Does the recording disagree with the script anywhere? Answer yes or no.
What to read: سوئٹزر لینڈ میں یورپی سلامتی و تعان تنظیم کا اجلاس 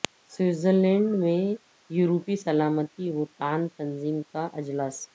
no